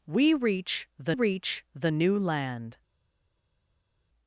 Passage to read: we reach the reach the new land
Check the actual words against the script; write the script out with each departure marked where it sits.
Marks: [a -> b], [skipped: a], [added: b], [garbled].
we reach the reach the new land